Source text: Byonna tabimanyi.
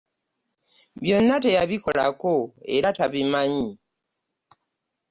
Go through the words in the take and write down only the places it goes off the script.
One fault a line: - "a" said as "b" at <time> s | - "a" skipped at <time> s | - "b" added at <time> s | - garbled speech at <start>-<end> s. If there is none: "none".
- "teyabikolako era" added at 1.4 s